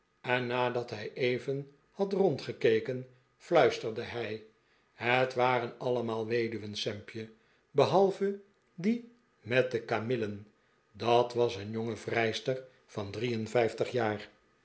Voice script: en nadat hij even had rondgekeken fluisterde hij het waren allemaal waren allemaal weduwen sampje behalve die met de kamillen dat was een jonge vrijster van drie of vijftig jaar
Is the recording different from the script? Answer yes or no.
yes